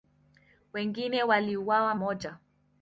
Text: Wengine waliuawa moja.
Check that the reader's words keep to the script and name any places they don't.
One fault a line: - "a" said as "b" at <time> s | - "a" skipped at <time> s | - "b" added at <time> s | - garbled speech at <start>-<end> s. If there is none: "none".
none